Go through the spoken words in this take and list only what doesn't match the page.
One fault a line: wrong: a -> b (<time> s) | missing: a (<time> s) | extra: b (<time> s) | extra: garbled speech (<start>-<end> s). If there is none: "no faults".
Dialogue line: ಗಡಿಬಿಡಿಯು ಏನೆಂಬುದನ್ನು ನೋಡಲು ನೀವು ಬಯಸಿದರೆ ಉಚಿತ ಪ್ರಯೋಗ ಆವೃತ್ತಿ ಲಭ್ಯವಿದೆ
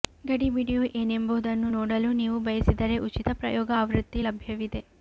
no faults